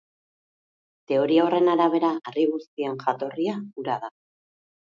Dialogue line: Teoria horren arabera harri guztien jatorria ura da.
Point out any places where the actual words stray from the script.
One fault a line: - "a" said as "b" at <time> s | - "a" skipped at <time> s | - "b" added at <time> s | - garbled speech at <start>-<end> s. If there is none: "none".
none